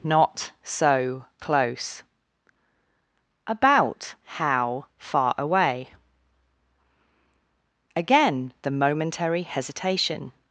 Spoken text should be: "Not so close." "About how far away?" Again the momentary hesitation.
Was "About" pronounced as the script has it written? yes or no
yes